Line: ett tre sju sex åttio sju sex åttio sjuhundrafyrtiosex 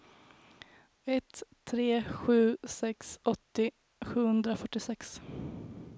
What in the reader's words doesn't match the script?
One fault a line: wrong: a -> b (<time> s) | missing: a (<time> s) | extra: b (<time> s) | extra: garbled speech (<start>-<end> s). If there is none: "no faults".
missing: sju sex åttio (3.7 s)